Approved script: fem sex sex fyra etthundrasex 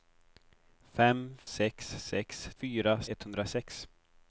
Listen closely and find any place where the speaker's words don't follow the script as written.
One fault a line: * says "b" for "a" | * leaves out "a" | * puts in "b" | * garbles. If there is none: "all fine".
all fine